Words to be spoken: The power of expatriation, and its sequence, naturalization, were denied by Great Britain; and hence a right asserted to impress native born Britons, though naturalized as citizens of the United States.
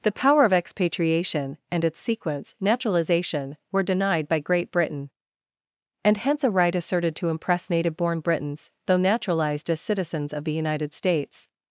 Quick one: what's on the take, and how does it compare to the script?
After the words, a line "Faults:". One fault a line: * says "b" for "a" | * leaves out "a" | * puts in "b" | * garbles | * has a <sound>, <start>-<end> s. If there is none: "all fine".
The power of expatriation, and its sequence, naturalization, were denied by Great Britain; and hence a right asserted to impress native born Britons, though naturalized as citizens of the United States.
Faults:
all fine